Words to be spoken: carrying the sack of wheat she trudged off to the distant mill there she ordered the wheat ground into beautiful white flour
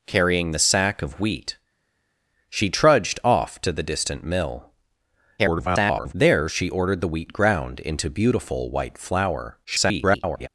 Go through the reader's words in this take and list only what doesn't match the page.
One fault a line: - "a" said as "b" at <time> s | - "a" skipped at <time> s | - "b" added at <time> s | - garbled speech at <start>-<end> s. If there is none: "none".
- garbled speech at 5.4-6.1 s
- garbled speech at 9.6-10.5 s